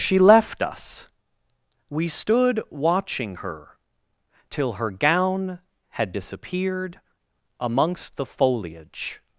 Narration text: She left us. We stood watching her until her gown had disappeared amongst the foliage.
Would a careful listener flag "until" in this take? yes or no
yes